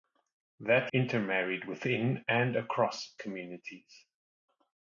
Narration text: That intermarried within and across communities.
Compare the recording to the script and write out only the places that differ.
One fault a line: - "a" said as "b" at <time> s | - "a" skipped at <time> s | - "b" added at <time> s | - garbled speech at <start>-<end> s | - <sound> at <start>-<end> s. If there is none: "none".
none